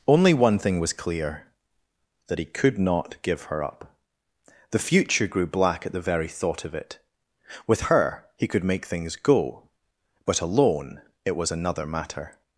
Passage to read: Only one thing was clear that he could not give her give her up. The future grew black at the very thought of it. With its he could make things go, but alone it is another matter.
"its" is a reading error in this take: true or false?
true